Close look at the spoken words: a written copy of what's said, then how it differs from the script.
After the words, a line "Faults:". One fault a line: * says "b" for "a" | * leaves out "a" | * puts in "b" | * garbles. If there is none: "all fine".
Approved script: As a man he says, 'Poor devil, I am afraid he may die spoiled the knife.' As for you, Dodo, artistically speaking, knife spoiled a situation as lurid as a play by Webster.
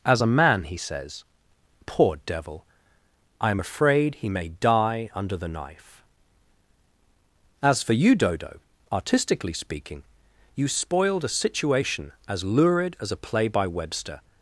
As a man he says, 'Poor devil, I am afraid he may die under the knife.' As for you, Dodo, artistically speaking, you spoiled a situation as lurid as a play by Webster.
Faults:
* says "under" for "spoiled"
* says "you" for "knife"